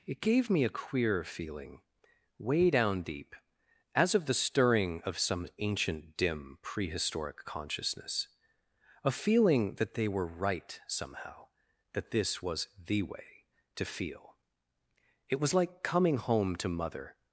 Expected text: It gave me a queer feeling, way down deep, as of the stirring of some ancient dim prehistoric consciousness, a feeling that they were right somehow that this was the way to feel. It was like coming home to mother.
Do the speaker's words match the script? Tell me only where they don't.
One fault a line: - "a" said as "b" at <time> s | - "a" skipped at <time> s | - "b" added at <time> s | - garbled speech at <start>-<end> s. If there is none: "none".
none